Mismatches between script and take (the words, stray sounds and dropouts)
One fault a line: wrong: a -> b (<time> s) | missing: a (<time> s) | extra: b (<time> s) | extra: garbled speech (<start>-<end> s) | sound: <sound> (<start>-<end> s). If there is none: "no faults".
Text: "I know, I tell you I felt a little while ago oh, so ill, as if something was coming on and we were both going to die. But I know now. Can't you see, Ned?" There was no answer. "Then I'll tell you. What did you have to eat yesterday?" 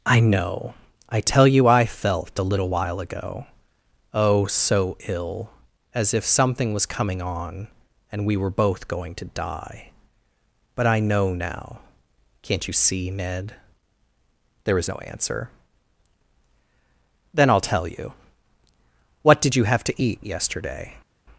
wrong: was -> is (14.8 s)